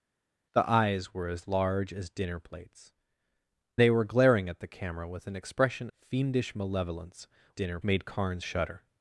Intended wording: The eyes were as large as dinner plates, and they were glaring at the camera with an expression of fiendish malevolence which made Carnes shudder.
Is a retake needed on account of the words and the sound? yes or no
yes